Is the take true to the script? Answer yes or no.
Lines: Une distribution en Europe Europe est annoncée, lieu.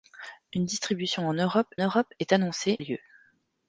yes